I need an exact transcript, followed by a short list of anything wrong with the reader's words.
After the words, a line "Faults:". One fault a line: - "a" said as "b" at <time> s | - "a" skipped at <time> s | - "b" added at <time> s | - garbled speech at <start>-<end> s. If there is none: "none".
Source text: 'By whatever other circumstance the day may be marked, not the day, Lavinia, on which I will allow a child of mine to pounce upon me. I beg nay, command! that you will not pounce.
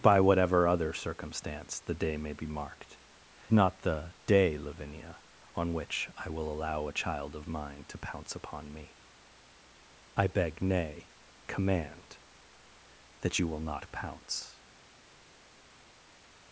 'By whatever other circumstance the day may be marked, not the day, Lavinia, on which I will allow a child of mine to pounce upon me. I beg nay, command! that you will not pounce.
Faults:
none